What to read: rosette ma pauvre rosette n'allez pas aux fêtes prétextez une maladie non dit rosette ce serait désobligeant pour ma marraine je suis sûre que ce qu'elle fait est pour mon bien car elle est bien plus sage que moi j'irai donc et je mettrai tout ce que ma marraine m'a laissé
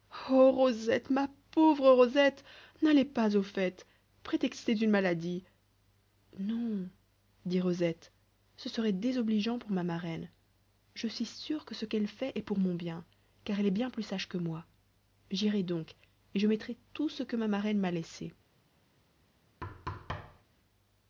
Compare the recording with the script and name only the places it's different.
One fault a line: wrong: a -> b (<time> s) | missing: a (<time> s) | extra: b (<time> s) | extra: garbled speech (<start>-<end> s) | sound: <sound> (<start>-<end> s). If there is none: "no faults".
sound: thud (19.6-20.4 s)